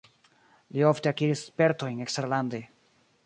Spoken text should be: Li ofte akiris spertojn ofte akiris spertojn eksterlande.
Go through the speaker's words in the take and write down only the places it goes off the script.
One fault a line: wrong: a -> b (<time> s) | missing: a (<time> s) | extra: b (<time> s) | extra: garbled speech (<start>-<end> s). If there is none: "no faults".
missing: ofte akiris spertojn (2.0 s)